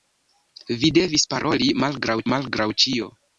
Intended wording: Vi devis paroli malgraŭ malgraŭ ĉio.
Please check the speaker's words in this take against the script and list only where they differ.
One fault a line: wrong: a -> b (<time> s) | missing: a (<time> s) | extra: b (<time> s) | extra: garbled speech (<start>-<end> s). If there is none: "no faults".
no faults